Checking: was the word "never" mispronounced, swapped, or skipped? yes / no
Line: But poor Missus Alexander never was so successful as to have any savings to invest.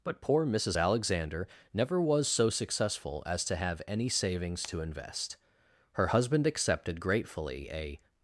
no